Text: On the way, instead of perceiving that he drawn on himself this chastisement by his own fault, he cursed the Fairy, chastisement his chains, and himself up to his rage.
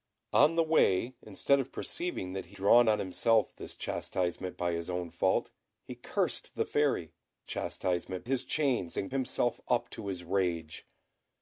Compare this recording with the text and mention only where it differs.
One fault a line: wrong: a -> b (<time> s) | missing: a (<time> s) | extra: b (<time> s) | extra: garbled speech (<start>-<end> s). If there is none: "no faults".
no faults